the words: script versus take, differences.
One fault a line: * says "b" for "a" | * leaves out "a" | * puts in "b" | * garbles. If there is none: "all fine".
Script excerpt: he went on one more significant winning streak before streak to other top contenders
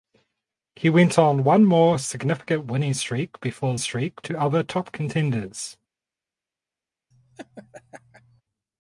all fine